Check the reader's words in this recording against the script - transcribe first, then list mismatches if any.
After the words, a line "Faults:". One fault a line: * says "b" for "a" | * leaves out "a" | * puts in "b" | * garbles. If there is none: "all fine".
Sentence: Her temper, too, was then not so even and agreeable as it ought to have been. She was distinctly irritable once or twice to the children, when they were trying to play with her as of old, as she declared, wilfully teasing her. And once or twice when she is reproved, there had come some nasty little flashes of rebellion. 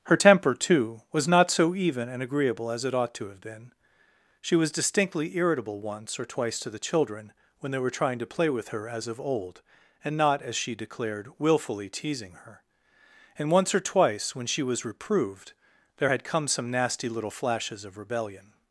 Her temper, too, was not so even and agreeable as it ought to have been. She was distinctly irritable once or twice to the children, when they were trying to play with her as of old, and not, as she declared, wilfully teasing her. And once or twice when she was reproved, there had come some nasty little flashes of rebellion.
Faults:
* leaves out "then"
* puts in "and not"
* says "was" for "is"